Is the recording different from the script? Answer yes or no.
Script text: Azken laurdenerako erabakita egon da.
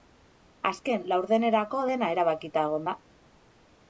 yes